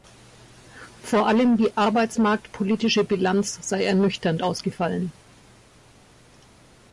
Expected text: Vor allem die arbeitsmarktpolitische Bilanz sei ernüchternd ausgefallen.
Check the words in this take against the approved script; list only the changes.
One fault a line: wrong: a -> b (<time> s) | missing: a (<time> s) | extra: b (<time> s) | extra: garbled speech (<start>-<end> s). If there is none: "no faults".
no faults